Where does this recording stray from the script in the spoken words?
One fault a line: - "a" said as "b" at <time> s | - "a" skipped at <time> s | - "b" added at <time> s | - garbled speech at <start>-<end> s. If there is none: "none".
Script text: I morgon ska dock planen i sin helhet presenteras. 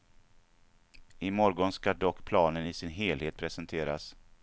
none